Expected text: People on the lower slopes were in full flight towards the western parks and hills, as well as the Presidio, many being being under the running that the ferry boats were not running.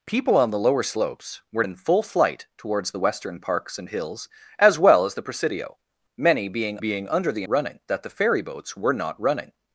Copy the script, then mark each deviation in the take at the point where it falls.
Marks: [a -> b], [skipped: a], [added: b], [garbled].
People on the lower slopes were in full flight towards the western parks and hills, as well as the Presidio, many being being under the running that the ferry boats were not running.